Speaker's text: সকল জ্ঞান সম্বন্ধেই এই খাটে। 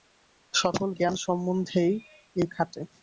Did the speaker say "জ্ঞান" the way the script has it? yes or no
yes